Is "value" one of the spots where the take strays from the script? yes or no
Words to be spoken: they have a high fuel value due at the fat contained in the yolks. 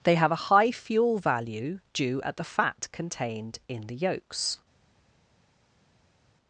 no